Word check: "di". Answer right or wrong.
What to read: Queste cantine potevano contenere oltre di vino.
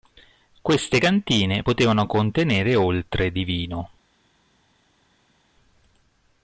right